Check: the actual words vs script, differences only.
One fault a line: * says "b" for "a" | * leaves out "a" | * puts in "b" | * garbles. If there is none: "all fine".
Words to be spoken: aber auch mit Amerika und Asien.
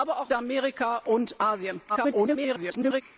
* leaves out "mit"
* garbles